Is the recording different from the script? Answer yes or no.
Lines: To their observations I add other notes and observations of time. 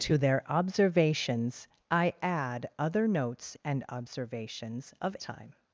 no